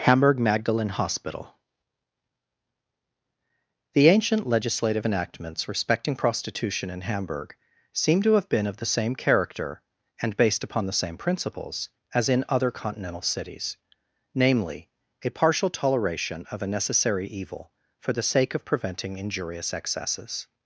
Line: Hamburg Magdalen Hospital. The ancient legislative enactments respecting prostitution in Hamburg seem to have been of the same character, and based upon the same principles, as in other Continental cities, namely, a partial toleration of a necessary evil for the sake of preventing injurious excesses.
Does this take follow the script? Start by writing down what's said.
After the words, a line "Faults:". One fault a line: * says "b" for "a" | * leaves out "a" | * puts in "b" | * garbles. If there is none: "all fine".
Hamburg Magdalen Hospital. The ancient legislative enactments respecting prostitution in Hamburg seem to have been of the same character, and based upon the same principles, as in other Continental cities, namely, a partial toleration of a necessary evil for the sake of preventing injurious excesses.
Faults:
all fine